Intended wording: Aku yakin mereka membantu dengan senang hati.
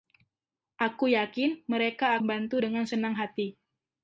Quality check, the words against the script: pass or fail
pass